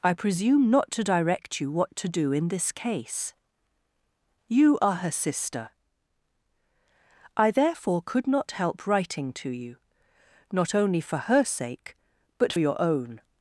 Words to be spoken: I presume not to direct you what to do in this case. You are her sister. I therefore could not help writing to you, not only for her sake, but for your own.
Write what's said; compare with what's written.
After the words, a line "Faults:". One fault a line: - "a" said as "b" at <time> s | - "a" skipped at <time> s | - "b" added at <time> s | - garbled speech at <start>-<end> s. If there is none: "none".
I presume not to direct you what to do in this case. You are her sister. I therefore could not help writing to you, not only for her sake, but your own.
Faults:
- "for" skipped at 12.5 s